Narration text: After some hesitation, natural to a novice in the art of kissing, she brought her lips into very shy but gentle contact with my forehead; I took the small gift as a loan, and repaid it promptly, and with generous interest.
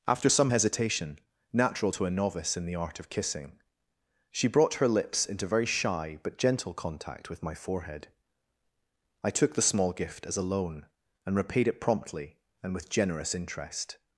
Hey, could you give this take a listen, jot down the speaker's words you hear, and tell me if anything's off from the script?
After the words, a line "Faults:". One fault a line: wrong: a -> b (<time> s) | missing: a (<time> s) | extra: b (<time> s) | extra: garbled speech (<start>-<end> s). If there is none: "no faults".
After some hesitation, natural to a novice in the art of kissing, she brought her lips into very shy but gentle contact with my forehead; I took the small gift as a loan, and repaid it promptly, and with generous interest.
Faults:
no faults